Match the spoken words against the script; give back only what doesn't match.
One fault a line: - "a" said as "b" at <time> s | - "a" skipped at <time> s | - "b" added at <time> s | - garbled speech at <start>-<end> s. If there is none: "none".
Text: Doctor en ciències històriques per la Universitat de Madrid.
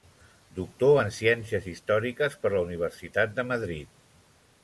none